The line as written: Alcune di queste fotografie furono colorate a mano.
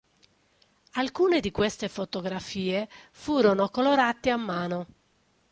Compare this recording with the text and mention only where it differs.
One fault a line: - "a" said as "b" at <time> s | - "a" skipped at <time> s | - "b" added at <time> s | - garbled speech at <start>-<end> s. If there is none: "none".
none